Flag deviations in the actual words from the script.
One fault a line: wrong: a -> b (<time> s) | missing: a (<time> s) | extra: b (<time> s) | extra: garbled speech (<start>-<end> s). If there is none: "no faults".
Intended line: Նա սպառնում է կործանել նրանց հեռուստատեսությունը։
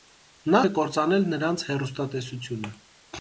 missing: սպառնում (0.6 s)